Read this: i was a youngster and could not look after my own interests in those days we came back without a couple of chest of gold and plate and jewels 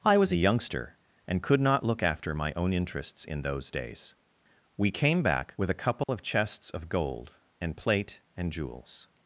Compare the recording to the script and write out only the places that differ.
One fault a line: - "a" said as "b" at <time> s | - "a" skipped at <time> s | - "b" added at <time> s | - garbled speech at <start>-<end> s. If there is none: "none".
- "without" said as "with" at 5.6 s
- "chest" said as "chests" at 6.2 s